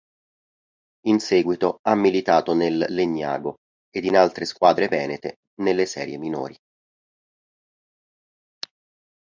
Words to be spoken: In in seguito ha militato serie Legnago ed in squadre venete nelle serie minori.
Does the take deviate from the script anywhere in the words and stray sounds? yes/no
yes